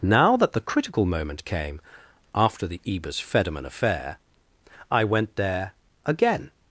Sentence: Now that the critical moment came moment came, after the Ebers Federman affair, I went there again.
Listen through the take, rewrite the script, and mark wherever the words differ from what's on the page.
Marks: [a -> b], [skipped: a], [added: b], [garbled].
Now that the critical moment came [skipped: moment came,] after the Ebers Federman affair, I went there again.